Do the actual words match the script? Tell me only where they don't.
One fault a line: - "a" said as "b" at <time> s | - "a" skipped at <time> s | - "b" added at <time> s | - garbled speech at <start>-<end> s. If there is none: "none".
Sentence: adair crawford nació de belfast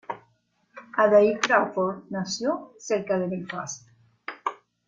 - "cerca" added at 2.8 s